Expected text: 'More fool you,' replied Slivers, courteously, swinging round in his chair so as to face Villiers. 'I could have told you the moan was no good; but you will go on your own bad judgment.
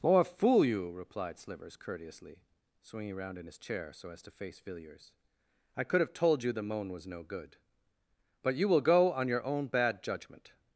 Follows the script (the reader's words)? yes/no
yes